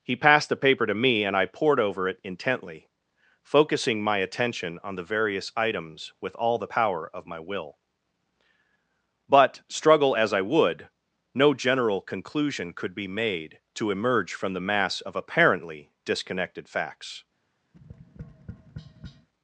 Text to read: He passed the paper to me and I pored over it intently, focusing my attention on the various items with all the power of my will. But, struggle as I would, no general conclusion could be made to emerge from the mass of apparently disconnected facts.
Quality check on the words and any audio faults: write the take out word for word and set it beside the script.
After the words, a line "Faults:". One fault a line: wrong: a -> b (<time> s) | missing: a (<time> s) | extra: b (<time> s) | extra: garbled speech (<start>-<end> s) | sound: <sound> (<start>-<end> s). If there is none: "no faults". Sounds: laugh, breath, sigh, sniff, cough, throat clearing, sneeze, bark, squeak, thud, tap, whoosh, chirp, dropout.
He passed the paper to me and I pored over it intently, focusing my attention on the various items with all the power of my will. But, struggle as I would, no general conclusion could be made to emerge from the mass of apparently disconnected facts.
Faults:
sound: tap (17.7-19.3 s)